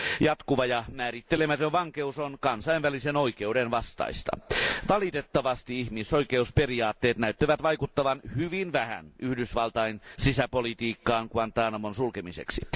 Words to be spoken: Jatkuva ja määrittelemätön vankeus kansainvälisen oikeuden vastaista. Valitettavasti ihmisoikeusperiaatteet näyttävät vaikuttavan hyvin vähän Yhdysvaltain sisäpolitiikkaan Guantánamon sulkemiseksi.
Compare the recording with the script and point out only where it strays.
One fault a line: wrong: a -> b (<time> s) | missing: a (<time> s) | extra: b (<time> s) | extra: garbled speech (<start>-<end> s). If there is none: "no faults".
extra: on (2.2 s)